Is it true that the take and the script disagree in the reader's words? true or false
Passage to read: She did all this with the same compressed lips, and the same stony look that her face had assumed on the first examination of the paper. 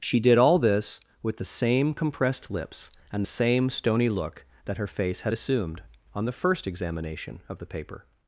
false